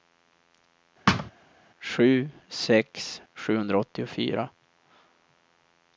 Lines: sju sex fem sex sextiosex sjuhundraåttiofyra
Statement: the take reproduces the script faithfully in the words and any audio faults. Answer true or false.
false